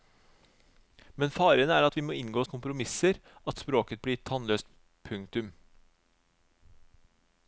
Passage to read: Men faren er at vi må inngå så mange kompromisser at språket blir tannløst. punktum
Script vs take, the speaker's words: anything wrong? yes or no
yes